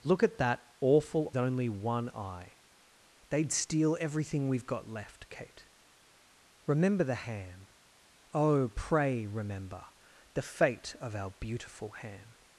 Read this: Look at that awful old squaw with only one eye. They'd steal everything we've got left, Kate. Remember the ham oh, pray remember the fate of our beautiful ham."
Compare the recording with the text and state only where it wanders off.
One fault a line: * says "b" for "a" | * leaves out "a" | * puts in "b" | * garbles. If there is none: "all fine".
* leaves out "old squaw with"